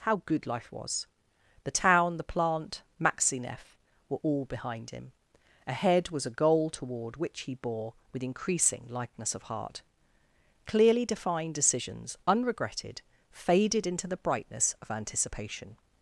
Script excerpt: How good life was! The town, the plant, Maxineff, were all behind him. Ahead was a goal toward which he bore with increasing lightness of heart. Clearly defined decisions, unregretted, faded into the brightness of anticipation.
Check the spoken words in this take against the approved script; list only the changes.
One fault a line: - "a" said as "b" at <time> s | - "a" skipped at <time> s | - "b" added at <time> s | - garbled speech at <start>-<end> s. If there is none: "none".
none